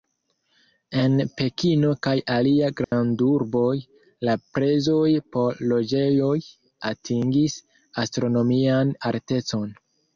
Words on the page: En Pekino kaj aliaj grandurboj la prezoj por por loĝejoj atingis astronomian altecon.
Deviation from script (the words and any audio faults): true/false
true